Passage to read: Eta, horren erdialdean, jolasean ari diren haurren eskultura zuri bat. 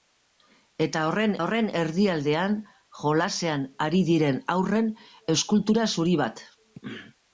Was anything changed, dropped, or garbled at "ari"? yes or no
no